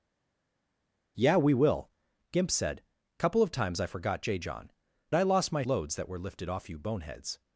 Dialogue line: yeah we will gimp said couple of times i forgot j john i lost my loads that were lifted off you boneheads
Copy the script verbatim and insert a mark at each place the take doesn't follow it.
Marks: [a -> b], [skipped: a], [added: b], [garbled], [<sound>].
yeah we will gimp said couple of times i forgot j john i lost my loads that were lifted off you boneheads